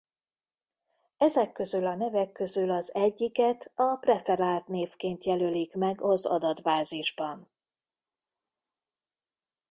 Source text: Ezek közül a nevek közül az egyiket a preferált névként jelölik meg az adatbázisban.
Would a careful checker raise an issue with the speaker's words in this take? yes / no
no